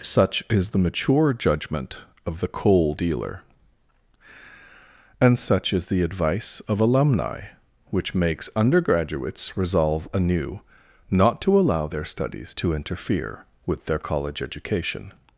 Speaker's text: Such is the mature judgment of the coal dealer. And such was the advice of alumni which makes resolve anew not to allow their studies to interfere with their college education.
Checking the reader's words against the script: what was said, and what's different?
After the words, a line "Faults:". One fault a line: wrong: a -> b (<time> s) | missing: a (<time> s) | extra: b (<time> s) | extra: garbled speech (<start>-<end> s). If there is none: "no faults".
Such is the mature judgment of the coal dealer. And such is the advice of alumni which makes undergraduates resolve anew not to allow their studies to interfere with their college education.
Faults:
wrong: was -> is (5.7 s)
extra: undergraduates (8.5 s)